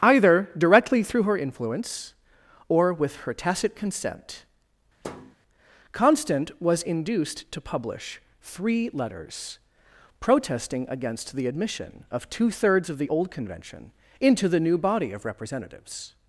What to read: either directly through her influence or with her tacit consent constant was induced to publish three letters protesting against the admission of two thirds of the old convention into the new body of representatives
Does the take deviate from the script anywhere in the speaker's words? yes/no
no